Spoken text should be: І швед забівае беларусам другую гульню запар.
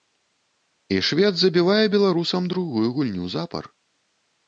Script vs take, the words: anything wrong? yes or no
no